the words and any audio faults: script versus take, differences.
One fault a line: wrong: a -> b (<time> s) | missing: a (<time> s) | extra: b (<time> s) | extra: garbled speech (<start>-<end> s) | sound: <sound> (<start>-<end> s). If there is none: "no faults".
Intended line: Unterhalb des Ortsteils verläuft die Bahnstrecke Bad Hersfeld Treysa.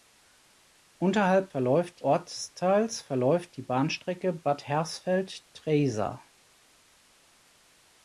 wrong: des -> verläuft (1.5 s)